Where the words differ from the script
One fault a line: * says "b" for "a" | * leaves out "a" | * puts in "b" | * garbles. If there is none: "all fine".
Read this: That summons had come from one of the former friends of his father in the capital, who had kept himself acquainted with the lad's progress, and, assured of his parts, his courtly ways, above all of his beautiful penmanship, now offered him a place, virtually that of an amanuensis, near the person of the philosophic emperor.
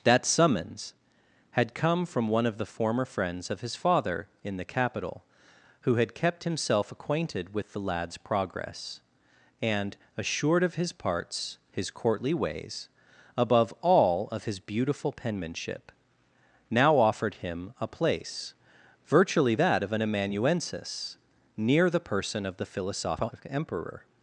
all fine